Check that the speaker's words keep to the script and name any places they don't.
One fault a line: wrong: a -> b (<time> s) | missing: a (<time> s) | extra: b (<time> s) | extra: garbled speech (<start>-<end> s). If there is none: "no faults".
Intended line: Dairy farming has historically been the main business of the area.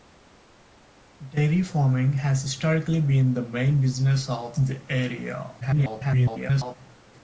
extra: garbled speech (5.6-6.8 s)